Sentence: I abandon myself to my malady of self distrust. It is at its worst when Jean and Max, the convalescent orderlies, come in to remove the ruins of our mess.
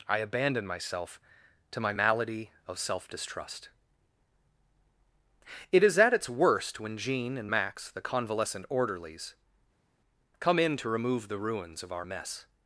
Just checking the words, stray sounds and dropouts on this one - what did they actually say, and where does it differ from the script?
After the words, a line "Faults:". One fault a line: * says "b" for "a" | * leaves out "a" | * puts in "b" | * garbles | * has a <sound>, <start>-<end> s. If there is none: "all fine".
I abandon myself to my malady of self distrust. It is at its worst when Jean and Max, the convalescent orderlies, come in to remove the ruins of our mess.
Faults:
all fine